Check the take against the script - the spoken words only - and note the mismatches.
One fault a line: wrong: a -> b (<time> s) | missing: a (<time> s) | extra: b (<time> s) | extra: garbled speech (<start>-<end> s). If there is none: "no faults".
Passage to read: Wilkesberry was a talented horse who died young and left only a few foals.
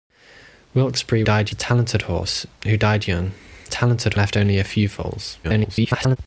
wrong: was -> died (1.2 s)
wrong: and -> talented (3.7 s)
extra: garbled speech (5.4-6.2 s)